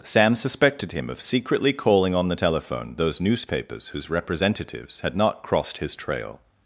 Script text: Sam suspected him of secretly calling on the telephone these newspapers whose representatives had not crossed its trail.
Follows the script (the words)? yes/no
no